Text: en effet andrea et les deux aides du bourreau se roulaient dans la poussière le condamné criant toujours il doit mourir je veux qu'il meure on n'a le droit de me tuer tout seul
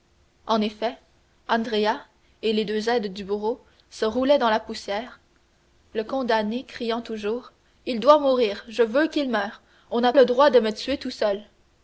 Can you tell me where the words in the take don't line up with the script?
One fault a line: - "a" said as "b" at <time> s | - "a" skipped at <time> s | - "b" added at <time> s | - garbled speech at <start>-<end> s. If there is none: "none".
none